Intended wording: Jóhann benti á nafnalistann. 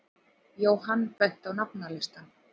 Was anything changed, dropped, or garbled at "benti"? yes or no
no